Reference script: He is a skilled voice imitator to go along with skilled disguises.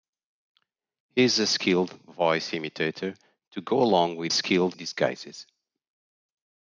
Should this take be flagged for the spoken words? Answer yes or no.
no